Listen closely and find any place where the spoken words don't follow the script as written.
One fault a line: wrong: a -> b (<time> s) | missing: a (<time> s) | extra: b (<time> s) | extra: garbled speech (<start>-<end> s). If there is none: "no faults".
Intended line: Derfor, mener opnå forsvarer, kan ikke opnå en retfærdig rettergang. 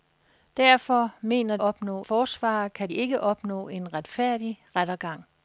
no faults